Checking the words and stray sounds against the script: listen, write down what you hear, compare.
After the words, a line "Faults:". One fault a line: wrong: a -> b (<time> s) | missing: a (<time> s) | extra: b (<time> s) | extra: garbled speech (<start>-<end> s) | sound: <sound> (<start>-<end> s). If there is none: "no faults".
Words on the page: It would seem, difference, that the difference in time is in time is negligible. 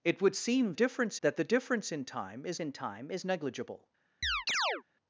It would seem, difference, that the difference in time is in time is negligible.
Faults:
sound: chirp (4.2-4.8 s)